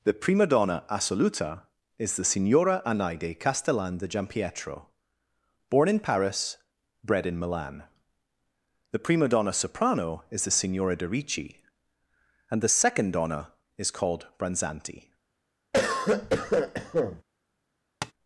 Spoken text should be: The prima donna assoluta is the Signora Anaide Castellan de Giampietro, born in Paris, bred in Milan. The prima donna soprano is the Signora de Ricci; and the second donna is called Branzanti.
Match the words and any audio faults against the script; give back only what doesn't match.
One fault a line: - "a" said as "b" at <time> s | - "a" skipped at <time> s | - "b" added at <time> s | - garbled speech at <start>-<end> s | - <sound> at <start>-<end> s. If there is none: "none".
- cough at 15.7-17.2 s
- tap at 18.0-18.1 s